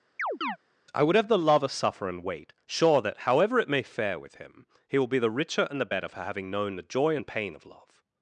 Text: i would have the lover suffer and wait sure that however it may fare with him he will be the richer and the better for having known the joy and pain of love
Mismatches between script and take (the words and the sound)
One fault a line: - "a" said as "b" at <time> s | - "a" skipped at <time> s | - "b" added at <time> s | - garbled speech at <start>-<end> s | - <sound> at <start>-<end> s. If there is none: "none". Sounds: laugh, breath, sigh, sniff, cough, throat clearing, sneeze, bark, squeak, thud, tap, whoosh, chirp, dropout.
- chirp at 0.2-0.6 s